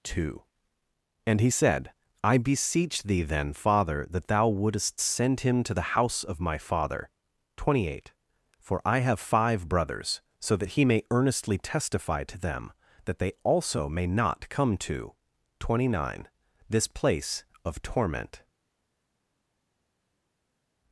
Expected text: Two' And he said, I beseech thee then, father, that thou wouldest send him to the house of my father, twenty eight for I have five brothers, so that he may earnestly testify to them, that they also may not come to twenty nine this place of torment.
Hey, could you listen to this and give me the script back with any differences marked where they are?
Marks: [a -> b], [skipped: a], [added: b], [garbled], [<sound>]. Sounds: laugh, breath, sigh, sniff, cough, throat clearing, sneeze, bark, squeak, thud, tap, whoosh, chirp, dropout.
Two' And he said, I beseech thee then, father, that thou wouldest send him to the house of my father, twenty eight for I have five brothers, so that he may earnestly testify to them, that they also may not come to twenty nine this place of torment.